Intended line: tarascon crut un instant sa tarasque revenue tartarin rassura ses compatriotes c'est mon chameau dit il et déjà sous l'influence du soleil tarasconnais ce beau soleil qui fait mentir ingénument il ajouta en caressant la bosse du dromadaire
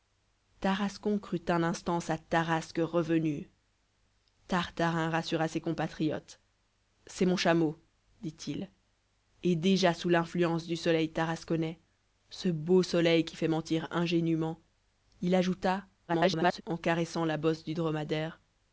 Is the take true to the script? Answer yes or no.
no